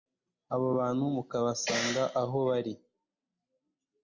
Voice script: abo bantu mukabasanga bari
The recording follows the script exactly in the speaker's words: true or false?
false